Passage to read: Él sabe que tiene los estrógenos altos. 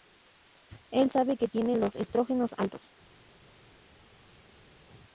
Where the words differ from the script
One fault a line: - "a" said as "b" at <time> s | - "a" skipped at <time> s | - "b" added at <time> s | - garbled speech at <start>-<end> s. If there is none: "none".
none